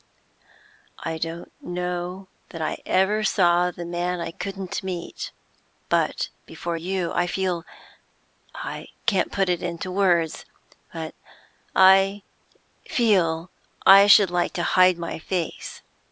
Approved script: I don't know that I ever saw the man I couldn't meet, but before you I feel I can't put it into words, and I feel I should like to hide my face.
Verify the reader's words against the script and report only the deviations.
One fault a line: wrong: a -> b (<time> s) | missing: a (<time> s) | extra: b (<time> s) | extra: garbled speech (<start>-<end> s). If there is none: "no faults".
wrong: and -> but (10.9 s)